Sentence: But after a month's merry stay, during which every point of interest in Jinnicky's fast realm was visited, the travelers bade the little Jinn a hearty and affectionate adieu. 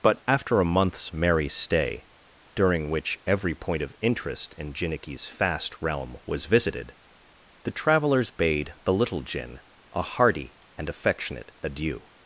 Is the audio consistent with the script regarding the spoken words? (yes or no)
yes